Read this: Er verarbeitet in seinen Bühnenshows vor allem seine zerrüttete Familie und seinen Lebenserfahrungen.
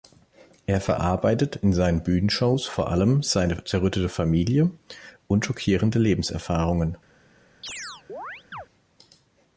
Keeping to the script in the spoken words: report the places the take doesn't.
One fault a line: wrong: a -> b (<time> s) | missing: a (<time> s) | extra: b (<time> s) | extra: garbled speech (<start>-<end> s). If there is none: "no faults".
wrong: seinen -> schockierende (5.4 s)